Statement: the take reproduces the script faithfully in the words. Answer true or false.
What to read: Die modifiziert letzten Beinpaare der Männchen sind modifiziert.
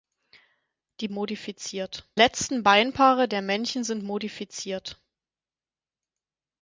true